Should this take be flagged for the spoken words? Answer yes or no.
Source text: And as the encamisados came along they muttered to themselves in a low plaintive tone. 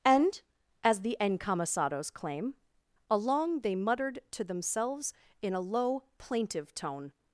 yes